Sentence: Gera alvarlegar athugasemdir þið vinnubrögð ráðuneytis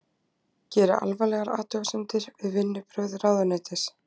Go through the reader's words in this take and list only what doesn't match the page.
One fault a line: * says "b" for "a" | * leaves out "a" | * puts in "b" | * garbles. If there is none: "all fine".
* says "við" for "þið"